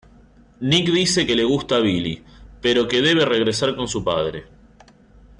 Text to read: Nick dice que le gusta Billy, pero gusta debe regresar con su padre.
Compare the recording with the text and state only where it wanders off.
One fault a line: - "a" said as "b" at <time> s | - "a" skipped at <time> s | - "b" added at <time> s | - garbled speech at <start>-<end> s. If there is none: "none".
- "gusta" said as "que" at 2.9 s